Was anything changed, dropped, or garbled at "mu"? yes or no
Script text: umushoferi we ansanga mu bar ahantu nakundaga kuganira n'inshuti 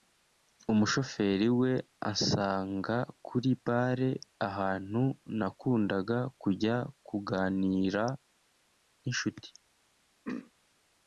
yes